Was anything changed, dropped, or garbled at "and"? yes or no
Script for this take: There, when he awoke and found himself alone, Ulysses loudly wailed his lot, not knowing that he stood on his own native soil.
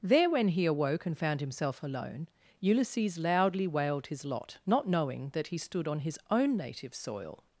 no